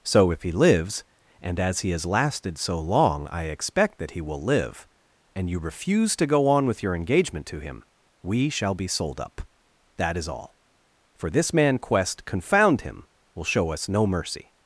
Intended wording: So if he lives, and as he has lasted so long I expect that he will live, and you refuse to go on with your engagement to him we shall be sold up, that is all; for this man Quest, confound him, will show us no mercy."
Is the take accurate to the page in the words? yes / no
yes